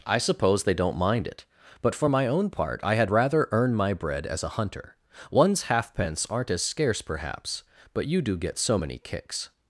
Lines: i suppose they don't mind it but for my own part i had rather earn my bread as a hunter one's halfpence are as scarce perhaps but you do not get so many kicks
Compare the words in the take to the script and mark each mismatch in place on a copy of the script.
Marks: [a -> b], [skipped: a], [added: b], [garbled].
i suppose they don't mind it but for my own part i had rather earn my bread as a hunter one's halfpence [are -> aren't] as scarce perhaps but you do [skipped: not] get so many kicks